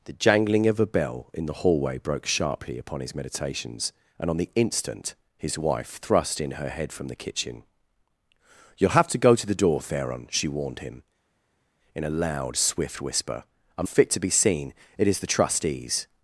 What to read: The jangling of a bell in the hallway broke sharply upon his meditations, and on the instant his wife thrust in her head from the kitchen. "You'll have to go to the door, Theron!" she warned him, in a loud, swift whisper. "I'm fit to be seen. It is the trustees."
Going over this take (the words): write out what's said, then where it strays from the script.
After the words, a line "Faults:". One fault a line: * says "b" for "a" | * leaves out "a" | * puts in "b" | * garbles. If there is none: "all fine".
The jangling of a bell in the hallway broke sharply upon his meditations, and on the instant his wife thrust in her head from the kitchen. "You'll have to go to the door, Theron!" she warned him, in a loud, swift whisper. "I'm fit to be seen. It is the trustees."
Faults:
all fine